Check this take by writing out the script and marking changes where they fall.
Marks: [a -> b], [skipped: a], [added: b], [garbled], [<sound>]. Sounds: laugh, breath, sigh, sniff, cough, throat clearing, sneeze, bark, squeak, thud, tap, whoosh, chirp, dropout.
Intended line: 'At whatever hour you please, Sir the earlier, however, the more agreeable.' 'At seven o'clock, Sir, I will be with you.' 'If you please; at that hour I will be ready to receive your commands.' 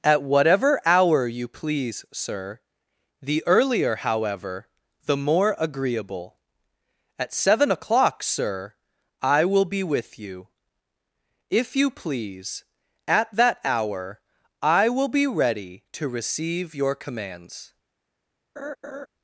'At whatever hour you please, Sir the earlier, however, the more agreeable.' 'At seven o'clock, Sir, I will be with you.' 'If you please; at that hour I will be ready to receive your commands.' [laugh]